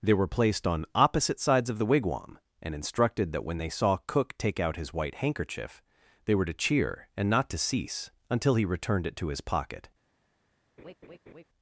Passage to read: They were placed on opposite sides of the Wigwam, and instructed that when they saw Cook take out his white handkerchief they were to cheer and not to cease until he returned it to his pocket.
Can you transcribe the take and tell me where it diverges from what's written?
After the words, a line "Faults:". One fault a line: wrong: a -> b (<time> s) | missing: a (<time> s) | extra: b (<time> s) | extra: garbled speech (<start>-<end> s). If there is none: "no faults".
They were placed on opposite sides of the Wigwam, and instructed that when they saw Cook take out his white handkerchief they were to cheer and not to cease until he returned it to his pocket.
Faults:
no faults